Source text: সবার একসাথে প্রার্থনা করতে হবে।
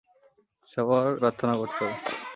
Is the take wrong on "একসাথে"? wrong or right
wrong